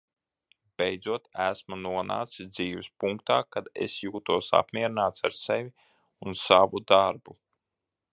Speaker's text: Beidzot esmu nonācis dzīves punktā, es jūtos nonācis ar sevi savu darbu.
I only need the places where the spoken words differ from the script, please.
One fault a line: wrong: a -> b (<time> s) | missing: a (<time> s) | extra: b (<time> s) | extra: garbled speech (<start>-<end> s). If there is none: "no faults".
extra: kad (3.6 s)
wrong: nonācis -> apmierināts (4.6 s)
extra: un (6.3 s)